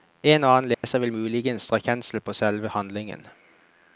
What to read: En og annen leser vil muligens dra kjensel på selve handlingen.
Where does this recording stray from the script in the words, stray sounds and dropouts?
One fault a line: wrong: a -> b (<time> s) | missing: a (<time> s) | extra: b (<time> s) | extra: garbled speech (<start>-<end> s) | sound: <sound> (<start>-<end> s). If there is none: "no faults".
sound: dropout (0.7-0.8 s)